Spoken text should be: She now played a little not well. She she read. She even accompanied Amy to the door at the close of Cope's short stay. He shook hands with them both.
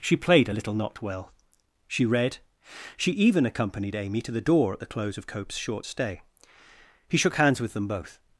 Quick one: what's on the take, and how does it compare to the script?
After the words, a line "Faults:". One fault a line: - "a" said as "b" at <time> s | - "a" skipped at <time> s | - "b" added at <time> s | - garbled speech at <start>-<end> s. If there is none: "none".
She played a little not well. She read. She even accompanied Amy to the door at the close of Cope's short stay. He shook hands with them both.
Faults:
- "now" skipped at 0.2 s
- "she" skipped at 2.0 s